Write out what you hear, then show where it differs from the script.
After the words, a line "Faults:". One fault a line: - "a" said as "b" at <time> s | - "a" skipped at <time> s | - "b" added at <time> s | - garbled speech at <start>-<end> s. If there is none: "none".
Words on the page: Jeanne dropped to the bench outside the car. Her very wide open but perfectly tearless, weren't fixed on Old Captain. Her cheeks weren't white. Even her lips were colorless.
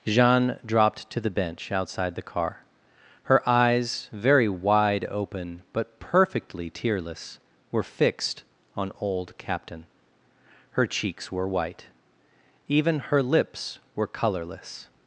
Jeanne dropped to the bench outside the car. Her eyes, very wide open but perfectly tearless, were fixed on Old Captain. Her cheeks were white. Even her lips were colorless.
Faults:
- "eyes" added at 3.5 s
- "weren't" said as "were" at 7.7 s
- "weren't" said as "were" at 11.3 s